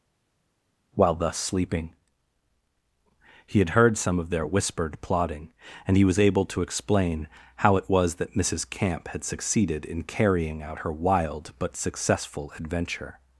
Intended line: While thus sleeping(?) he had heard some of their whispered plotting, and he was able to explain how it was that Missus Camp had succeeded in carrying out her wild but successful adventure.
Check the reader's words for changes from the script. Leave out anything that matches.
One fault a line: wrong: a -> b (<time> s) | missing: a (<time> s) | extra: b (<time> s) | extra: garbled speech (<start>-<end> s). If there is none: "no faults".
no faults